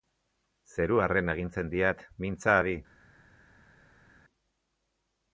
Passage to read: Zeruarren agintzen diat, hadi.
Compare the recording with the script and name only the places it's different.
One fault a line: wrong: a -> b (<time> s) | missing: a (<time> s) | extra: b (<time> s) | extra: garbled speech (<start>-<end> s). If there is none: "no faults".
extra: mintza (2.2 s)